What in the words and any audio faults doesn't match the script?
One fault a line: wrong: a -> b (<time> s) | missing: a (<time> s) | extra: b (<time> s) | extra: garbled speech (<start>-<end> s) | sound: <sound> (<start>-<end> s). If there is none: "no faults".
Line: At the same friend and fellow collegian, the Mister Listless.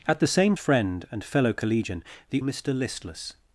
no faults